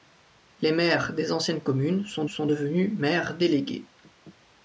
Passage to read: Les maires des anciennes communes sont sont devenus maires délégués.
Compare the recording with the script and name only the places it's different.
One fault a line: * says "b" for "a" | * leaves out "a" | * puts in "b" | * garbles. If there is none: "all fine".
all fine